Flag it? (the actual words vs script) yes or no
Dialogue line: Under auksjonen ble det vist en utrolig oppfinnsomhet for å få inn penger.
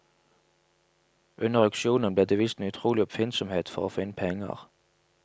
no